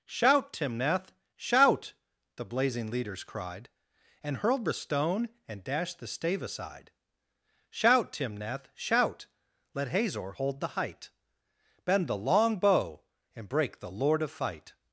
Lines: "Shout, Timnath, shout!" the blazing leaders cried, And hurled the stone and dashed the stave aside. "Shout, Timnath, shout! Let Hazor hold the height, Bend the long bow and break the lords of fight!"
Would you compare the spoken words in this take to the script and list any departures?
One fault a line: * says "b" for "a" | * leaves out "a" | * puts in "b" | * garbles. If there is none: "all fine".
* says "lord" for "lords"